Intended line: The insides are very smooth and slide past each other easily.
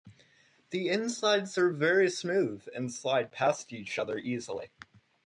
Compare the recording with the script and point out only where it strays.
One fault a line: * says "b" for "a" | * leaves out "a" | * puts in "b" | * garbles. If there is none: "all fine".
all fine